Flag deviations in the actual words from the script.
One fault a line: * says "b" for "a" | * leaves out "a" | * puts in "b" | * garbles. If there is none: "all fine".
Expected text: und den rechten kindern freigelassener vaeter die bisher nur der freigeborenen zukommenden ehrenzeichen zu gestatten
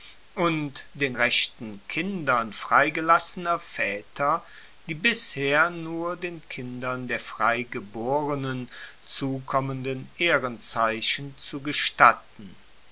* puts in "den kindern"